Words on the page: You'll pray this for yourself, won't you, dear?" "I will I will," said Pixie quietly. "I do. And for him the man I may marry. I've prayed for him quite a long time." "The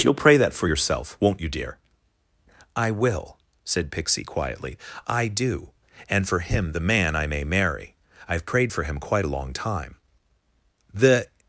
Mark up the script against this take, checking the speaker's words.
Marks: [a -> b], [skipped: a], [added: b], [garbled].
You'll pray [this -> that] for yourself, won't you, dear?" "I will [skipped: I will,"] said Pixie quietly. "I do. And for him the man I may marry. I've prayed for him quite a long time." "The